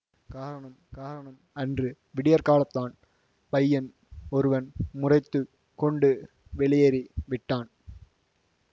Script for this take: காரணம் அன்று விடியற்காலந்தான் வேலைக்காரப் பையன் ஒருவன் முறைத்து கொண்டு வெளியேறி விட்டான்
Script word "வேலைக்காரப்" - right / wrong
wrong